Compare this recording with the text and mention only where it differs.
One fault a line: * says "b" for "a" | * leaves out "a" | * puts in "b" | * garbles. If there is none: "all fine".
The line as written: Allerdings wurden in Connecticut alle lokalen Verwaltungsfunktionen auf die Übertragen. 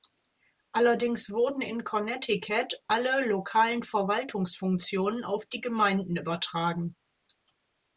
* puts in "Gemeinden"